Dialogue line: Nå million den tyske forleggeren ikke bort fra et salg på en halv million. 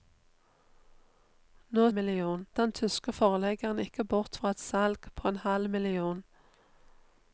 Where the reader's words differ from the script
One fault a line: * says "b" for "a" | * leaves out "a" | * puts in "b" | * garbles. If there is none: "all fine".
all fine